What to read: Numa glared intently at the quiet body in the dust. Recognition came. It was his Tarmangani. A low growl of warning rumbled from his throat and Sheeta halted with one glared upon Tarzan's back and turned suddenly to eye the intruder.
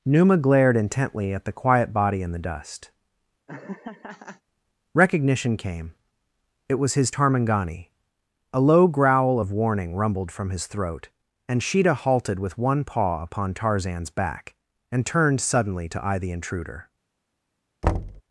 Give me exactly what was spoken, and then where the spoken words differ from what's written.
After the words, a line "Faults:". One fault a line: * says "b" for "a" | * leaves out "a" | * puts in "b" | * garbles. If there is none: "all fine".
Numa glared intently at the quiet body in the dust. Recognition came. It was his Tarmangani. A low growl of warning rumbled from his throat and Sheeta halted with one paw upon Tarzan's back and turned suddenly to eye the intruder.
Faults:
* says "paw" for "glared"